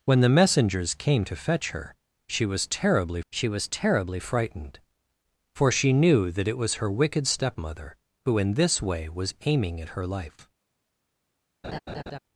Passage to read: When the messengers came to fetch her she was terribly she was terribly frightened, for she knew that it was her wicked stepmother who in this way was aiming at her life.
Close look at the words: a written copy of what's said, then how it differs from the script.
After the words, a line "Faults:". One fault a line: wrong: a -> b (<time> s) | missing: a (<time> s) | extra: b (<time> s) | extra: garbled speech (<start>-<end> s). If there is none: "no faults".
When the messengers came to fetch her she was terribly she was terribly frightened, for she knew that it was her wicked stepmother who in this way was aiming at her life.
Faults:
no faults